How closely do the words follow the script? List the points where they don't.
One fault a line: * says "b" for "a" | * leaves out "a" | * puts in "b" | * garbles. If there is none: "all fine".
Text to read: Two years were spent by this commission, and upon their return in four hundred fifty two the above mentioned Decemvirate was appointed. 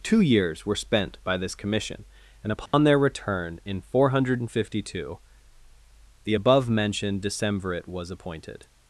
all fine